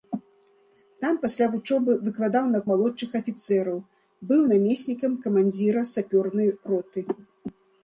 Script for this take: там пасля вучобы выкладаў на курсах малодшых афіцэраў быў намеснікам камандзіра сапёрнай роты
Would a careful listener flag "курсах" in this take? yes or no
yes